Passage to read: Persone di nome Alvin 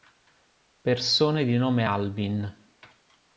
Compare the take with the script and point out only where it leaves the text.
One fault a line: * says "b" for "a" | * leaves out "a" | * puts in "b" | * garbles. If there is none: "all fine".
all fine